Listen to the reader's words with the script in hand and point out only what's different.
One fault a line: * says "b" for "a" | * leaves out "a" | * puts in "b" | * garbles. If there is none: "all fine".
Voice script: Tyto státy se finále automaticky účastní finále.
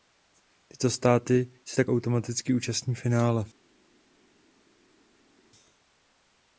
* says "tak" for "finále"